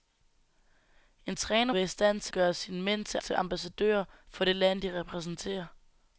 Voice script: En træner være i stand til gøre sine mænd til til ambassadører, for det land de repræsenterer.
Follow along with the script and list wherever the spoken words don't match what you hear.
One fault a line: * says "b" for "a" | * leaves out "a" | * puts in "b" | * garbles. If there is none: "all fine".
all fine